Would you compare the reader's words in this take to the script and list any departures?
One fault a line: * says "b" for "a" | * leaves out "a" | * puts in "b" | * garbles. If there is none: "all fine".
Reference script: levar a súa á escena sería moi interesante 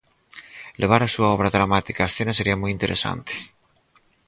* puts in "obra dramática"